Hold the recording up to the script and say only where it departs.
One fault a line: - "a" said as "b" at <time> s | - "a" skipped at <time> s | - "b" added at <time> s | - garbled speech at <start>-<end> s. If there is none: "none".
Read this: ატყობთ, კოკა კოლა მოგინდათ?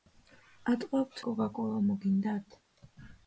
none